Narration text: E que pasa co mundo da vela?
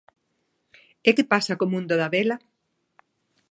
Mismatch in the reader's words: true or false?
false